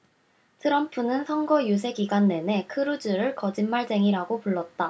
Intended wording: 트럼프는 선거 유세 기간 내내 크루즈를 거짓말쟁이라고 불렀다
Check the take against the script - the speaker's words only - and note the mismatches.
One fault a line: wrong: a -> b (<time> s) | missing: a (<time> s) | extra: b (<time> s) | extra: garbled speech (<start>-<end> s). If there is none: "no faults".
no faults